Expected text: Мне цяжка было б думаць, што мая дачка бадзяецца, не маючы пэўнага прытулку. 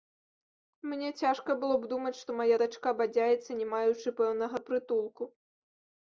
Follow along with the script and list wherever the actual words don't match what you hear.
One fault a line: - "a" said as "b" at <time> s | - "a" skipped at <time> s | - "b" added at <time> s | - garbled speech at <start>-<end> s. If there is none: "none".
none